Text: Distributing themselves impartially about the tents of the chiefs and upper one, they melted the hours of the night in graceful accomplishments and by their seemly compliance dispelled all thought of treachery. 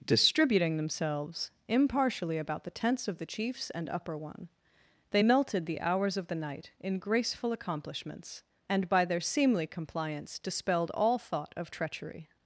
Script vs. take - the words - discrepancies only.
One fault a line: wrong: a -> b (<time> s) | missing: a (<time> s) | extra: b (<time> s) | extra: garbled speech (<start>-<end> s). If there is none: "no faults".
no faults